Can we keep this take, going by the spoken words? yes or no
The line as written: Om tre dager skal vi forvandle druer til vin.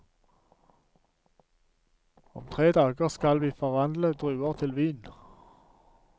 yes